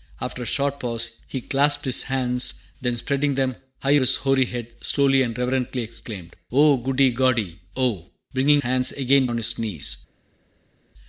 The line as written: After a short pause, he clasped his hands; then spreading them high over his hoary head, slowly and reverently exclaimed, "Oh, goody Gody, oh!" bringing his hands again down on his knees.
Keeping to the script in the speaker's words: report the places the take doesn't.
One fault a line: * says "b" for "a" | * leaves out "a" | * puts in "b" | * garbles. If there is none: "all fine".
* leaves out "over"
* leaves out "his"
* leaves out "down"